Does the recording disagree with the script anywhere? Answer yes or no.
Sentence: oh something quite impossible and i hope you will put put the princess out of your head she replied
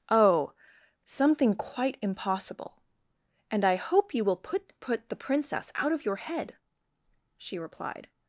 no